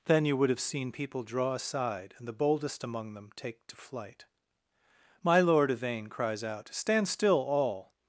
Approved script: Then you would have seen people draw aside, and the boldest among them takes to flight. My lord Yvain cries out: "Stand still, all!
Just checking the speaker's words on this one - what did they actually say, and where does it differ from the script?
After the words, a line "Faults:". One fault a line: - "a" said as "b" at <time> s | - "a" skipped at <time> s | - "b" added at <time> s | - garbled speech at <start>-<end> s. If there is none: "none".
Then you would have seen people draw aside, and the boldest among them take to flight. My lord Yvain cries out: "Stand still, all!
Faults:
- "takes" said as "take" at 3.4 s